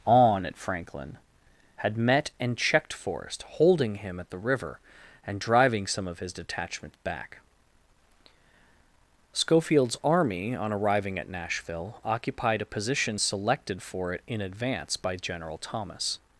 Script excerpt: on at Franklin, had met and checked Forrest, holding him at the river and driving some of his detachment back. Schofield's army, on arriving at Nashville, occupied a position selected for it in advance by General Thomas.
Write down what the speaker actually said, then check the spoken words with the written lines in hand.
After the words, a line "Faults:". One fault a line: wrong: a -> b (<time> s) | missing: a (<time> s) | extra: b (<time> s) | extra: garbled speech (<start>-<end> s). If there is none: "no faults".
on at Franklin, had met and checked Forrest, holding him at the river and driving some of his detachment back. Schofield's army, on arriving at Nashville, occupied a position selected for it in advance by General Thomas.
Faults:
no faults